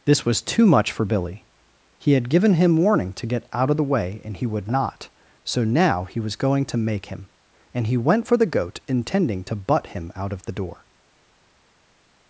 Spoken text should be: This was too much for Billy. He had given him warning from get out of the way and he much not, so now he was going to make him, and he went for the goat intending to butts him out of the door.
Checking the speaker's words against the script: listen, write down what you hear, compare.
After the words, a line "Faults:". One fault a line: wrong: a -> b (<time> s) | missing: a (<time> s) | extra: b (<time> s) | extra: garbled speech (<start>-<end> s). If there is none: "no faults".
This was too much for Billy. He had given him warning to get out of the way and he would not, so now he was going to make him, and he went for the goat intending to butt him out of the door.
Faults:
wrong: from -> to (3.1 s)
wrong: much -> would (4.5 s)
wrong: butts -> butt (9.6 s)